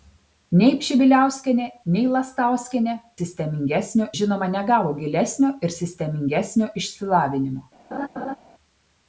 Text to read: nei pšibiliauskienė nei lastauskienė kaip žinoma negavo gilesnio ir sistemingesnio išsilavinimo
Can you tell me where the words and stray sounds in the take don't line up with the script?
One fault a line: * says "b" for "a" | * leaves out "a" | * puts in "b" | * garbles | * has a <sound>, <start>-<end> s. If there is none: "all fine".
* says "sistemingesnio" for "kaip"
* has a laugh, 7.9-8.4 s